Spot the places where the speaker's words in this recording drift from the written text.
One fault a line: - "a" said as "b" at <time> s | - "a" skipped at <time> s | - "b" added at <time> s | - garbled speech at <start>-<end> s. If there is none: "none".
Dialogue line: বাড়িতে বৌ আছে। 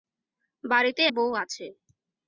none